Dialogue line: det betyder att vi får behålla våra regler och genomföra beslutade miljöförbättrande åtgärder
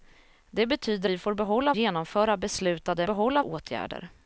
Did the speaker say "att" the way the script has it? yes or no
no